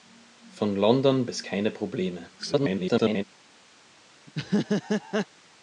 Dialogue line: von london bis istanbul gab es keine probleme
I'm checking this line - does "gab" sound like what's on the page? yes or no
no